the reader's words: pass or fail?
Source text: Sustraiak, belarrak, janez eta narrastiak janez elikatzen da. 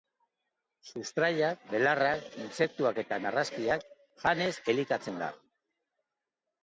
fail